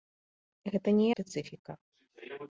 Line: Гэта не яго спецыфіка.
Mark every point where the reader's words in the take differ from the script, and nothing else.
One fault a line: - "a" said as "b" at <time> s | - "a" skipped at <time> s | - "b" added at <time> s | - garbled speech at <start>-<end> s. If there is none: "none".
- "яго" skipped at 1.1 s